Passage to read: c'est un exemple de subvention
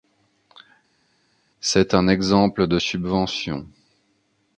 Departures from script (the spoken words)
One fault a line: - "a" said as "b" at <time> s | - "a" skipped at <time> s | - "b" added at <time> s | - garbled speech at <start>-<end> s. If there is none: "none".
none